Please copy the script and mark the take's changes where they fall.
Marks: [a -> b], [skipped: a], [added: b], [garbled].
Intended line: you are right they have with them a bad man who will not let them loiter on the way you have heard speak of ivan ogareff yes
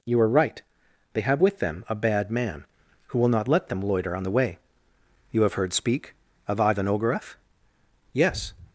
you are right they have with them a bad man who will not let them loiter on the way you have heard speak of ivan ogareff yes